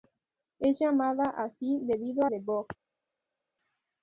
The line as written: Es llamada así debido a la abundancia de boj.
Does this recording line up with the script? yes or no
no